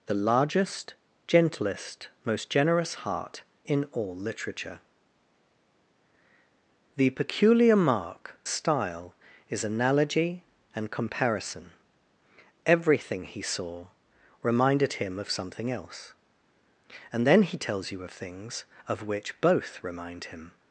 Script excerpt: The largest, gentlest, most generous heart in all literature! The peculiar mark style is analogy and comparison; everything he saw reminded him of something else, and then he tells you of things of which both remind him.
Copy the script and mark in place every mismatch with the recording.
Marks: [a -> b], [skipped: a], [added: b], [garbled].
The largest, gentlest, most generous heart in all literature! The peculiar mark style is analogy and comparison; everything he saw reminded him of something else, and then he tells you of things of which both remind him.